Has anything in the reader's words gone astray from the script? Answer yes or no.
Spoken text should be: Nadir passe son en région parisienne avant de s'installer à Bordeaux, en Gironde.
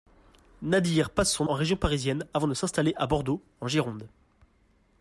no